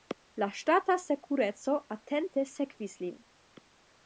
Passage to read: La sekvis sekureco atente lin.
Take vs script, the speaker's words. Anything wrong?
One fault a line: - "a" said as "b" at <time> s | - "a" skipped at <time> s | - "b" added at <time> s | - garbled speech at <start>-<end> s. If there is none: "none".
- "sekvis" said as "ŝtata" at 0.6 s
- "sekvis" added at 2.5 s